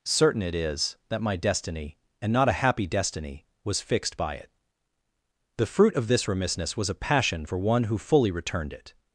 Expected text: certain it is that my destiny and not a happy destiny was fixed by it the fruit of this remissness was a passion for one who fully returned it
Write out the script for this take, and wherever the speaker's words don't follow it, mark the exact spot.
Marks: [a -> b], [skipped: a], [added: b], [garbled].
certain it is that my destiny and not a happy destiny was fixed by it the fruit of this remissness was a passion for one who fully returned it